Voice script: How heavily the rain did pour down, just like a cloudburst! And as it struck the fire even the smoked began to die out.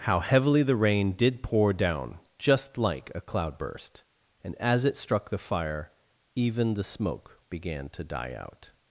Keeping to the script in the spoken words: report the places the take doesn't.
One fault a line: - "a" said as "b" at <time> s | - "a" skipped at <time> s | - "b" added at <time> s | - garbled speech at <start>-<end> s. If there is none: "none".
- "smoked" said as "smoke" at 6.8 s